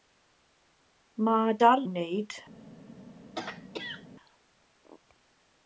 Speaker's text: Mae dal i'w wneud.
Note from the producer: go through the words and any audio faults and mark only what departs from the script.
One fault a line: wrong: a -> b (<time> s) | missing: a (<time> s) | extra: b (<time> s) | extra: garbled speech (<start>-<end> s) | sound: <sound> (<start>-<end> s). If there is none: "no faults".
sound: throat clearing (3.3-4.1 s)